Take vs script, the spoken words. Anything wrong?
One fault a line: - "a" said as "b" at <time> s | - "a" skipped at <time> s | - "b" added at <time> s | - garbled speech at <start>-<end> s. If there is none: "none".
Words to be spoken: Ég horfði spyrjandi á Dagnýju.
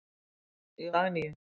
- "horfði spyrjandi á" skipped at 0.9 s